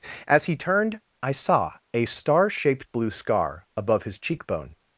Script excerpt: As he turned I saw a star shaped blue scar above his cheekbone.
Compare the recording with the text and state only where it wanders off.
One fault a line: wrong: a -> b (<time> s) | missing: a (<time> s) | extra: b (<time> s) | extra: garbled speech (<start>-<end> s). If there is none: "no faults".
no faults